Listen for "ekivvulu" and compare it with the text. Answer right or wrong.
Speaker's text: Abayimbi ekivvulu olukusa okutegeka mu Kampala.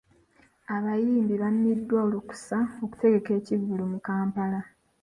wrong